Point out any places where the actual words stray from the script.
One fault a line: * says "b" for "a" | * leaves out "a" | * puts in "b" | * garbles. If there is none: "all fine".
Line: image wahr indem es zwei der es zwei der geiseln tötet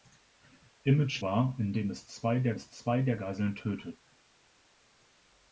all fine